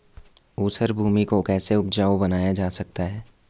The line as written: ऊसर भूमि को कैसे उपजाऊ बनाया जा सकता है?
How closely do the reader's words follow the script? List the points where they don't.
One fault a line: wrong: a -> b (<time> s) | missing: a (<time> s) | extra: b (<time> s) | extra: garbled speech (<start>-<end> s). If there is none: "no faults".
no faults